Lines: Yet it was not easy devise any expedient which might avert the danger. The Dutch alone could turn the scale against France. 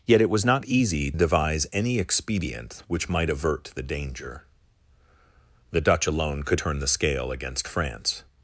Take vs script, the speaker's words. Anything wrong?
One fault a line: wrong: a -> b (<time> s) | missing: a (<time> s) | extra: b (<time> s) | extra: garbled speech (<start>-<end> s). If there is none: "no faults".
no faults